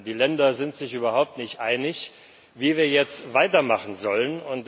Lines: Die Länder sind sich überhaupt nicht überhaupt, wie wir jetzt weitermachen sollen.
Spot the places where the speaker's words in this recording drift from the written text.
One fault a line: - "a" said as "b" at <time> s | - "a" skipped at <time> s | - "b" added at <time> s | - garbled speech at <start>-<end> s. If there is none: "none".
- "überhaupt" said as "einig" at 1.6 s